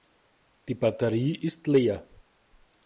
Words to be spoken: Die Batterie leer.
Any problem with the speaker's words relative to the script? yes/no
yes